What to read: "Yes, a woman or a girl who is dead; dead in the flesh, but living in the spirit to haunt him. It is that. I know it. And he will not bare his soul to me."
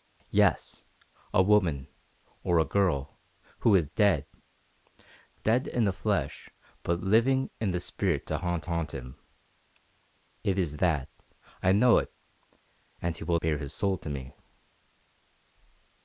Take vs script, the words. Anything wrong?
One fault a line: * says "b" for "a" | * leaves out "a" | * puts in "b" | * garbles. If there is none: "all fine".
* puts in "haunt"
* leaves out "not"